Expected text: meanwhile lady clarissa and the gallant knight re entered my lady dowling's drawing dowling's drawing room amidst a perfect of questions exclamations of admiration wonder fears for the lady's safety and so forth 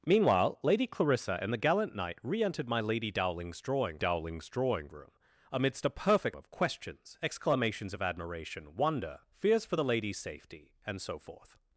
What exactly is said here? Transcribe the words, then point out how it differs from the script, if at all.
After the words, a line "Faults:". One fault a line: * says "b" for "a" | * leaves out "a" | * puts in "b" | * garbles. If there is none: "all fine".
meanwhile lady clarissa and the gallant knight re entered my lady dowling's drawing dowling's drawing room amidst a perfect of questions exclamations of admiration wonder fears for the lady's safety and so forth
Faults:
all fine